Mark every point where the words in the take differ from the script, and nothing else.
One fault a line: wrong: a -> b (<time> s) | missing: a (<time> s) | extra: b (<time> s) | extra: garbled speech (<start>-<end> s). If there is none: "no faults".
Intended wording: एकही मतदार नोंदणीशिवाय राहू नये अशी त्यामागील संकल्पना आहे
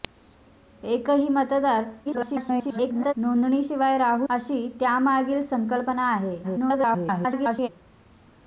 extra: garbled speech (2.1-3.1 s)
missing: नये (4.3 s)
extra: garbled speech (6.4-7.7 s)